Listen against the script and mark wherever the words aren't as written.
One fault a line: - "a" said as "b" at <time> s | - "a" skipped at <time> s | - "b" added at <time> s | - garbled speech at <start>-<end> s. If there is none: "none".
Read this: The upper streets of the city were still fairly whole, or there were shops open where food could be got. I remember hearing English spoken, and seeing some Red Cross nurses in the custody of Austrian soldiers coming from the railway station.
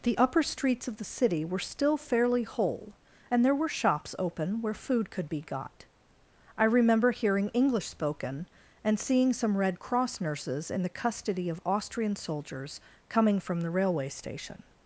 - "or" said as "and" at 3.3 s